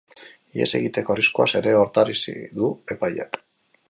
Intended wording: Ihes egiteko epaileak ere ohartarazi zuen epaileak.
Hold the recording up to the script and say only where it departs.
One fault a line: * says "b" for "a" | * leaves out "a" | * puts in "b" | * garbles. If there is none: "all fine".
* says "arriskuaz" for "epaileak"
* says "du" for "zuen"